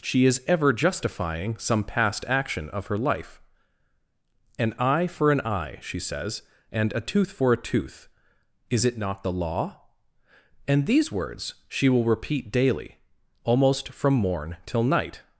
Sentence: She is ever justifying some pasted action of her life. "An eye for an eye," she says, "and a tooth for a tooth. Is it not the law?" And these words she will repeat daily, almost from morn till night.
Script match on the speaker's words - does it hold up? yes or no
no